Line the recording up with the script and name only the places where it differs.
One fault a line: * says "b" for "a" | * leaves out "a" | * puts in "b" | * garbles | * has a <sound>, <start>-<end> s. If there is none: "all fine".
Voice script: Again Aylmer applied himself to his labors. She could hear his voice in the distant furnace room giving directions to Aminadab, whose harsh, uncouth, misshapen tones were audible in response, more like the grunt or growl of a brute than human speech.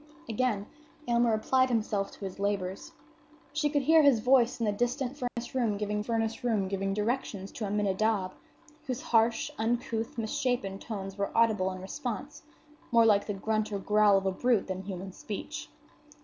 * has a dropout, 5.3-5.4 s
* puts in "furnace room giving"